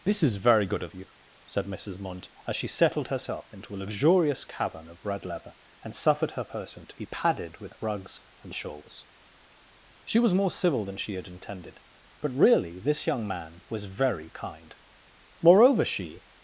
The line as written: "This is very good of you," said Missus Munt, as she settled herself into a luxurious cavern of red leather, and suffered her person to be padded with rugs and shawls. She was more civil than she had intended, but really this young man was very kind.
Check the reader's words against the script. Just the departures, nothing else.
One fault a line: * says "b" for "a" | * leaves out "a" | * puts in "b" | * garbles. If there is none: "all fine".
* puts in "Moreover she"